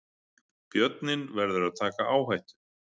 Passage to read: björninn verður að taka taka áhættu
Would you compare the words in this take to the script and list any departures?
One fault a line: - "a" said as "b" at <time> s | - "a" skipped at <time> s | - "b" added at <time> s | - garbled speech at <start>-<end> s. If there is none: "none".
- "taka" skipped at 2.1 s